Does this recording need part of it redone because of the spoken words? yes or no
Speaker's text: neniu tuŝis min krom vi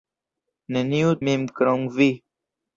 yes